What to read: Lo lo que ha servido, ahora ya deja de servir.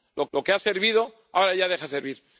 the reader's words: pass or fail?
pass